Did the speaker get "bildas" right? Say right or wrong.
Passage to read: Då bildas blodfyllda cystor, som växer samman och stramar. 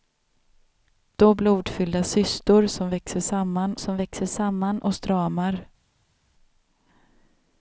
wrong